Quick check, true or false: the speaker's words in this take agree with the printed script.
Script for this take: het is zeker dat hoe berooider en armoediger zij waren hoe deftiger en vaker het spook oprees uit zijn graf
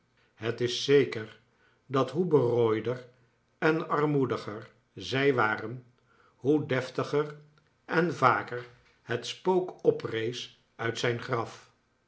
true